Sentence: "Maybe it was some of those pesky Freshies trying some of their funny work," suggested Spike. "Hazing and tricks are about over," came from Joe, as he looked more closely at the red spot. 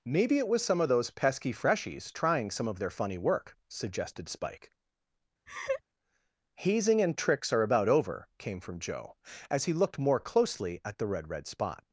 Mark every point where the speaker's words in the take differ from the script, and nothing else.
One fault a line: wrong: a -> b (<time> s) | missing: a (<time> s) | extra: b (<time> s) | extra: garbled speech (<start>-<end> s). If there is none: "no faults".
extra: red (11.3 s)